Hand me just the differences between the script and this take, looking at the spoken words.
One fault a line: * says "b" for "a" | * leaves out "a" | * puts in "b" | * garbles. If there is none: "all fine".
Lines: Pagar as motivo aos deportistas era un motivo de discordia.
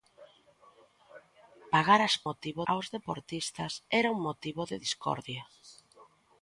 all fine